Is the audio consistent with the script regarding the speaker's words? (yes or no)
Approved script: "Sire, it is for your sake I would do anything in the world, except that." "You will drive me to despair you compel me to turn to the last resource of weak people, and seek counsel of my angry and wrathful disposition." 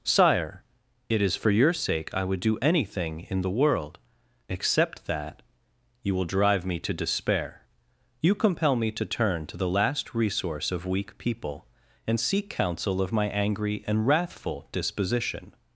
yes